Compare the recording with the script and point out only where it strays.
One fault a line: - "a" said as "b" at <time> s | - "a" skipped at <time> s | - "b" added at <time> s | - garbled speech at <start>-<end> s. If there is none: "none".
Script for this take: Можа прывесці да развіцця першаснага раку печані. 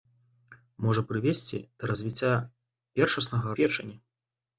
- "раку" skipped at 3.5 s